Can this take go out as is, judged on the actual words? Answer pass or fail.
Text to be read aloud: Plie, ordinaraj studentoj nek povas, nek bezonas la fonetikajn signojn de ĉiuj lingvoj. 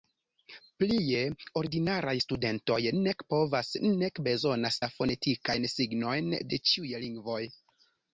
pass